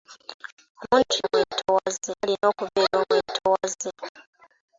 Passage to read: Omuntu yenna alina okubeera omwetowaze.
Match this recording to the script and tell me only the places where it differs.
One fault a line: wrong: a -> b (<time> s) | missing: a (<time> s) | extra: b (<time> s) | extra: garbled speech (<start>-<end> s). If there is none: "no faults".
wrong: yenna -> omwetowaze (1.3 s)